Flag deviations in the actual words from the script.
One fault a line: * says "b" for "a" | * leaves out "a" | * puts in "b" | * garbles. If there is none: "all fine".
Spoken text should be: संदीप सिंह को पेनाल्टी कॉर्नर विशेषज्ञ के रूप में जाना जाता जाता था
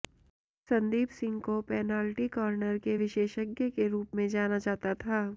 * puts in "के"
* leaves out "जाता"